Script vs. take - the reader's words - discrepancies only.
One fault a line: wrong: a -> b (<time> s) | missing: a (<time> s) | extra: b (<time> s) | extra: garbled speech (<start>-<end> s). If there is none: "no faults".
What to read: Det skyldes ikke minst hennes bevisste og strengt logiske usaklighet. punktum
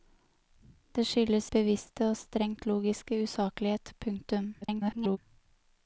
missing: ikke minst hennes (1.5 s)
extra: garbled speech (4.6-5.2 s)